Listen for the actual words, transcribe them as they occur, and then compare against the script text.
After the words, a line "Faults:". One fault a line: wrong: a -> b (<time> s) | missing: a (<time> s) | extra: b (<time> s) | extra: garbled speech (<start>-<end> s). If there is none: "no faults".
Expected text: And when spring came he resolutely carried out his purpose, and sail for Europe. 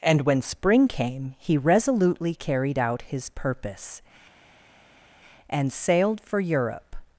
And when spring came he resolutely carried out his purpose, and sailed for Europe.
Faults:
wrong: sail -> sailed (5.7 s)